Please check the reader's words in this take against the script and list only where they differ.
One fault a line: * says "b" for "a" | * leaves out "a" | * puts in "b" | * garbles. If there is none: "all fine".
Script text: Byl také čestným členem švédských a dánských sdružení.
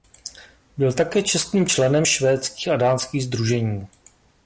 all fine